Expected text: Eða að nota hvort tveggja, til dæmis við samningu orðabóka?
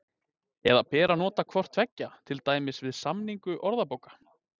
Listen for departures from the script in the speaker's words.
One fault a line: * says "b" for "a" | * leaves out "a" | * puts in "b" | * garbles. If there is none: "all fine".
* puts in "ber"